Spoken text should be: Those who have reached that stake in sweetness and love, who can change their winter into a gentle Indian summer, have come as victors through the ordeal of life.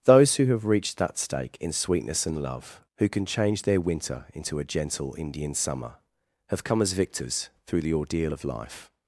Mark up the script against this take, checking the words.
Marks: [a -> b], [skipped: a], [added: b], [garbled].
Those who have reached that stake in sweetness and love, who can change their winter into a gentle Indian summer, have come as victors through the ordeal of life.